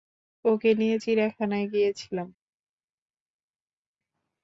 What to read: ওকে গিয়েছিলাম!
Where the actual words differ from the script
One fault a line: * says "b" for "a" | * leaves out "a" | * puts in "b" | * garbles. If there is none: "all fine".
* puts in "নিয়ে চিড়িয়াখানায়"